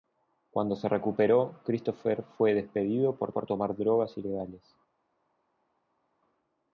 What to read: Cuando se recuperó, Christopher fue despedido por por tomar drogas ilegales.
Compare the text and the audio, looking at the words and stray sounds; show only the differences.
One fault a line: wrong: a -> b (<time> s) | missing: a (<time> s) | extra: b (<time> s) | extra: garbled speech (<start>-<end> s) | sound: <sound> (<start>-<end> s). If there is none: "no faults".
no faults